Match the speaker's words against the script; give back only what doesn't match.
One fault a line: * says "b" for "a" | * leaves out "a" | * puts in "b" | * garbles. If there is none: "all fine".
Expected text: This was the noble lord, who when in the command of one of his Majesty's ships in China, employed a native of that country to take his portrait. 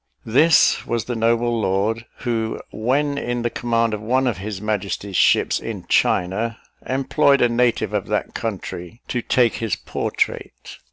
all fine